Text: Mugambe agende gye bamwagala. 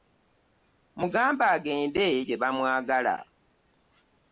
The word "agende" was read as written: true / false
true